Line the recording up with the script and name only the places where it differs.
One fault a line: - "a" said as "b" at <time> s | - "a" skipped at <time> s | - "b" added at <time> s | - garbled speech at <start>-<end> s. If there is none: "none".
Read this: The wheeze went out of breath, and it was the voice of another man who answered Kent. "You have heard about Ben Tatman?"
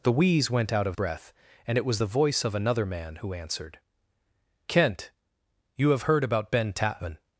none